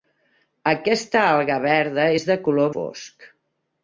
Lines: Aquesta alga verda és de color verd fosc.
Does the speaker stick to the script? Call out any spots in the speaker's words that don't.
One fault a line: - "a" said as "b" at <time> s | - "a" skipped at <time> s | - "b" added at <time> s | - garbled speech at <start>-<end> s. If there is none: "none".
- "verd" skipped at 2.7 s